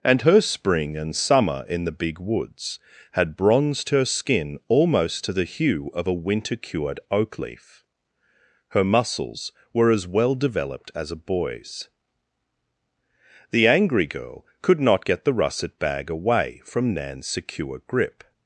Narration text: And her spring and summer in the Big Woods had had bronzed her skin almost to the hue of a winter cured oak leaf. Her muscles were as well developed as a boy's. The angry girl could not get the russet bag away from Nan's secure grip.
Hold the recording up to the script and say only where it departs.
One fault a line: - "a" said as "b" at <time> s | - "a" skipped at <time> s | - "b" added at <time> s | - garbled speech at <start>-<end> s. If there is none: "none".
- "had" skipped at 3.4 s